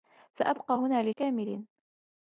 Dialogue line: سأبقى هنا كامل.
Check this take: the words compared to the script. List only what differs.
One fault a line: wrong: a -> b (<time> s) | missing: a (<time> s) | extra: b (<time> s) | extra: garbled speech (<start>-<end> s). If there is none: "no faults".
no faults